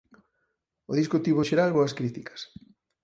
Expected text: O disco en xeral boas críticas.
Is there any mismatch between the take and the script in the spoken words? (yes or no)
yes